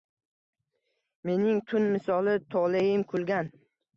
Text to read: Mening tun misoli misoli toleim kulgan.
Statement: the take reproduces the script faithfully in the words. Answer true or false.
false